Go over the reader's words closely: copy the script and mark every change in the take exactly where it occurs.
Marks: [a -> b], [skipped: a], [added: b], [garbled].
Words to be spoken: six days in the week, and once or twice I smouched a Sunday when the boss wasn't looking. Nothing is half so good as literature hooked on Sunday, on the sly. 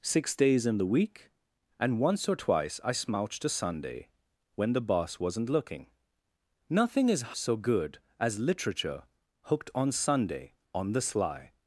six days in the week, and once or twice I smouched a Sunday when the boss wasn't looking. Nothing is [skipped: half] so good as literature hooked on Sunday, on the sly.